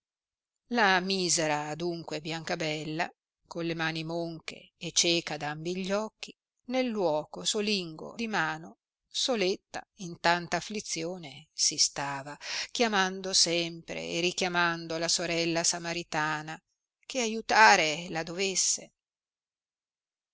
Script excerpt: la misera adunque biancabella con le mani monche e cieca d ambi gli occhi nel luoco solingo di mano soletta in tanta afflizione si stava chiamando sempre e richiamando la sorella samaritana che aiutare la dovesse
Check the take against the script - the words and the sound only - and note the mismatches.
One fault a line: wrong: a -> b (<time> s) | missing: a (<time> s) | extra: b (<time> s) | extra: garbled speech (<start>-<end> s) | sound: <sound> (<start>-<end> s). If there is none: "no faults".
no faults